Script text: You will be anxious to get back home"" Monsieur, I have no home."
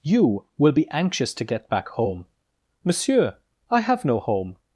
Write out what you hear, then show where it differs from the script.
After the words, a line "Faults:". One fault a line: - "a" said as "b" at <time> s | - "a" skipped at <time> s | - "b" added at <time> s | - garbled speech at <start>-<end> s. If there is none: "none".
You will be anxious to get back home"" Monsieur, I have no home."
Faults:
none